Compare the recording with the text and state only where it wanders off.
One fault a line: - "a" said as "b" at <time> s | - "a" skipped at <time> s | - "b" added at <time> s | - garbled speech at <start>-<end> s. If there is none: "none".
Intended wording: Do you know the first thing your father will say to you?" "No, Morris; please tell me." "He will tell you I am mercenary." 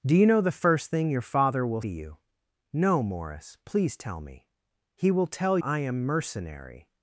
- "say" skipped at 1.8 s
- "you" skipped at 5.6 s